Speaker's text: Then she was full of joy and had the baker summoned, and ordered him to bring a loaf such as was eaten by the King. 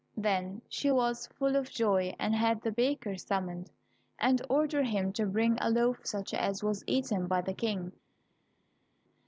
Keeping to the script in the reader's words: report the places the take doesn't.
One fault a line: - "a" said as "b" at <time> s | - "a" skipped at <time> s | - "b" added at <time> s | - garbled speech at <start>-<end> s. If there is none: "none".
none